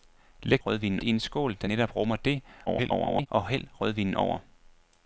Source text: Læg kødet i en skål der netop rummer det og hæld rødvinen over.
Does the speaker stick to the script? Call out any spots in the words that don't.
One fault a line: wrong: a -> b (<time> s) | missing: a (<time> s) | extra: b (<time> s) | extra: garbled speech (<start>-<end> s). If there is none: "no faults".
wrong: kødet -> rødvinen (0.7 s)
extra: garbled speech (2.7-3.3 s)